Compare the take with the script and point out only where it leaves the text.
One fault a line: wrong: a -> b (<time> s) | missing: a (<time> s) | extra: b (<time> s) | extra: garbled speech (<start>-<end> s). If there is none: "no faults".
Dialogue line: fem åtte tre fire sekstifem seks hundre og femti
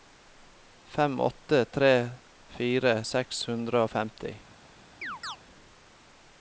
missing: sekstifem (3.0 s)